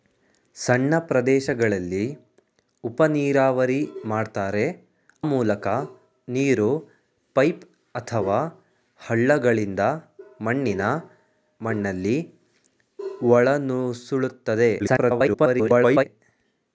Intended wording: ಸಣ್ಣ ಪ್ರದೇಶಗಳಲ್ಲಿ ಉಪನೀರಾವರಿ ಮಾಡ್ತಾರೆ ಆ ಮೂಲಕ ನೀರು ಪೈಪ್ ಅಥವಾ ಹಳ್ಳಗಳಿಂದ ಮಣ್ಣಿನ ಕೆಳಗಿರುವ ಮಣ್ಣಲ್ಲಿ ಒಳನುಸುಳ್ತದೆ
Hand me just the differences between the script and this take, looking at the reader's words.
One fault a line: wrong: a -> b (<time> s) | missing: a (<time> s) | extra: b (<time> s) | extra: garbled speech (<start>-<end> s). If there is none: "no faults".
missing: ಆ (4.6 s)
missing: ಕೆಳಗಿರುವ (10.8 s)
extra: garbled speech (14.8-16.0 s)